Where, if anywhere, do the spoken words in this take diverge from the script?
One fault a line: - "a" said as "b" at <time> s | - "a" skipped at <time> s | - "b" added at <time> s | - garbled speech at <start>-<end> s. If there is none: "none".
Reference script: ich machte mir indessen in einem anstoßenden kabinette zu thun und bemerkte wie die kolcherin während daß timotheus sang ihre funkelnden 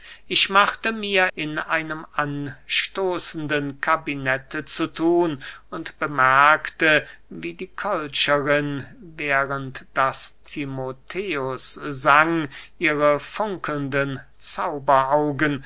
- "indessen" skipped at 1.3 s